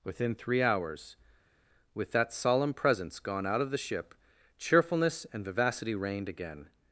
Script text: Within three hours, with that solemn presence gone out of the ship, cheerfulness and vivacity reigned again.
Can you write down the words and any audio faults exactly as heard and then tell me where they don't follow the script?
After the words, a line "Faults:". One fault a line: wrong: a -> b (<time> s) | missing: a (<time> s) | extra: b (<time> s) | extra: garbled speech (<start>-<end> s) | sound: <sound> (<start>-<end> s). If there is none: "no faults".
Within three hours, with that solemn presence gone out of the ship, cheerfulness and vivacity reigned again.
Faults:
no faults